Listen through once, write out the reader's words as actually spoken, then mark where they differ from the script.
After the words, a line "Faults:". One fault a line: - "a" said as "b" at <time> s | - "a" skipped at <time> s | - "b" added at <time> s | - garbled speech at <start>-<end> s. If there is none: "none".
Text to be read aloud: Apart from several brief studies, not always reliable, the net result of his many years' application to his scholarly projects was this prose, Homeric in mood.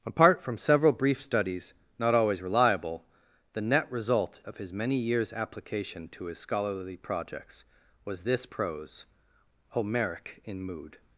Apart from several brief studies, not always reliable, the net result of his many years' application to his scholarly projects was this prose, Homeric in mood.
Faults:
none